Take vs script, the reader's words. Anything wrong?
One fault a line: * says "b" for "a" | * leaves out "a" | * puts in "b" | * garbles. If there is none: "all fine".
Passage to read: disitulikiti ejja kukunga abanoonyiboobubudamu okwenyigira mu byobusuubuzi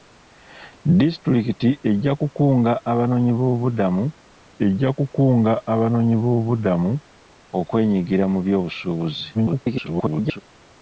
* puts in "ejja kukunga abanoonyiboobubudamu"
* garbles